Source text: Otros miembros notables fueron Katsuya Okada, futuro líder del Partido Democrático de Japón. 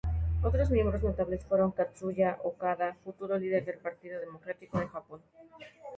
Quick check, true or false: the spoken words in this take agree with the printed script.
true